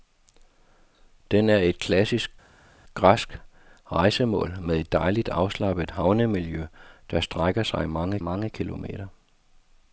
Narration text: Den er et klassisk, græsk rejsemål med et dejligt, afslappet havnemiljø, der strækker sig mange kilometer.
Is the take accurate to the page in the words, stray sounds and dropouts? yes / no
no